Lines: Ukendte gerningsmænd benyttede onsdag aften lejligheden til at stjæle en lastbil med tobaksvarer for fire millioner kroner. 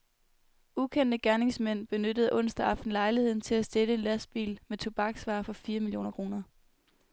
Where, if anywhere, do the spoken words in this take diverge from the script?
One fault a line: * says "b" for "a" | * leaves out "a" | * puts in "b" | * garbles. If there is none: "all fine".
all fine